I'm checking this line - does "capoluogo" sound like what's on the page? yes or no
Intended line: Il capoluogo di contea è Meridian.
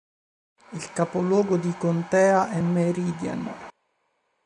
yes